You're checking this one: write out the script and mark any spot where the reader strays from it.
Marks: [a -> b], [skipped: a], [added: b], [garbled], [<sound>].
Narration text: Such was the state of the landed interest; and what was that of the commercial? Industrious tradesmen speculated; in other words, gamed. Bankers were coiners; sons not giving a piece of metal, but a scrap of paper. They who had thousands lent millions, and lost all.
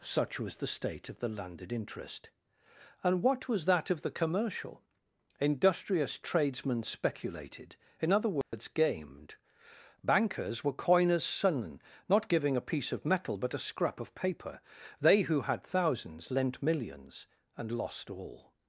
Such was the state of the landed interest; and what was that of the commercial? Industrious tradesmen speculated; in other words, [dropout] gamed. Bankers were coiners; sons not giving a piece of metal, but a scrap of paper. They who had thousands lent millions, and lost all.